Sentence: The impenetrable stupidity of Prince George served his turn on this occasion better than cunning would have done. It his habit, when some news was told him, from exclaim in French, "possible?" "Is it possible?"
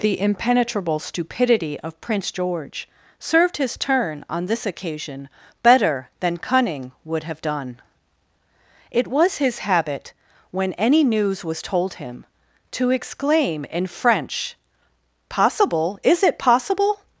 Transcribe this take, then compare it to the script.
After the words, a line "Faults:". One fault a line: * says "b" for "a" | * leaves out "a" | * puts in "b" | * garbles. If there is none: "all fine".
The impenetrable stupidity of Prince George served his turn on this occasion better than cunning would have done. It was his habit, when any news was told him, to exclaim in French, "possible?" "Is it possible?"
Faults:
* puts in "was"
* says "any" for "some"
* says "to" for "from"